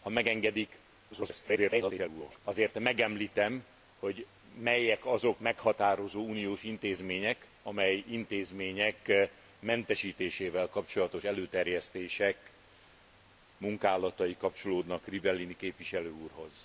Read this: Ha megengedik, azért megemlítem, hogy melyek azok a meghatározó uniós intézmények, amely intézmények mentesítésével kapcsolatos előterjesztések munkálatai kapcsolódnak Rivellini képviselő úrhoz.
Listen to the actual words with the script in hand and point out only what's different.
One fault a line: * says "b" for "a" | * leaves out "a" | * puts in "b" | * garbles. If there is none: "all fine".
* garbles
* leaves out "a"